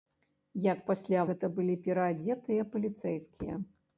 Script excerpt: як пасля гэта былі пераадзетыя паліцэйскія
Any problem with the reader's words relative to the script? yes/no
no